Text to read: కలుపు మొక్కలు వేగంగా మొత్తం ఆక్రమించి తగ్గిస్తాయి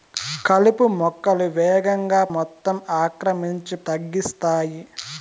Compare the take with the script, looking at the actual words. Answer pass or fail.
pass